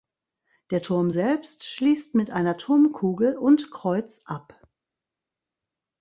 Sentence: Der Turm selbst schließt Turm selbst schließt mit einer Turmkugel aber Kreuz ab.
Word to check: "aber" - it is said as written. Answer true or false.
false